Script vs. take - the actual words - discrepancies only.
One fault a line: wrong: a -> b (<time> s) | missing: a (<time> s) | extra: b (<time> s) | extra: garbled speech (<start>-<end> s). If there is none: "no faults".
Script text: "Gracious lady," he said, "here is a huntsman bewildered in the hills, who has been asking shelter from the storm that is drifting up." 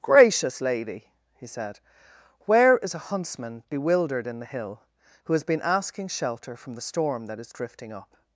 wrong: here -> where (2.5 s)
wrong: hills -> hill (4.5 s)